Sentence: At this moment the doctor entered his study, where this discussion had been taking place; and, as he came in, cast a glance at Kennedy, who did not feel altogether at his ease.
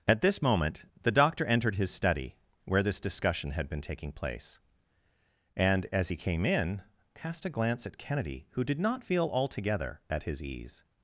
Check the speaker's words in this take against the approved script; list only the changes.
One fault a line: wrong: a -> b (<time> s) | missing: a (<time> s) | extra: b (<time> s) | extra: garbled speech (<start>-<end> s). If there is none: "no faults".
no faults